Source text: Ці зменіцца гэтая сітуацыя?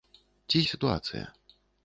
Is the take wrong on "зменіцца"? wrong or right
wrong